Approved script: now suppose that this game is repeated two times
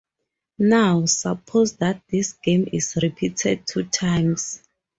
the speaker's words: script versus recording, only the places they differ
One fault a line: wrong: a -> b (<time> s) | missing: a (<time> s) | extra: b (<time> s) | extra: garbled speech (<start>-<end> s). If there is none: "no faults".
no faults